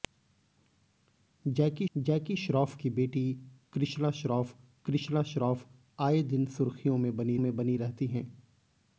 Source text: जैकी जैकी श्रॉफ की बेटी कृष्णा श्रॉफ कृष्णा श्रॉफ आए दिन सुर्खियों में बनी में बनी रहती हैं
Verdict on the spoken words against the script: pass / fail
pass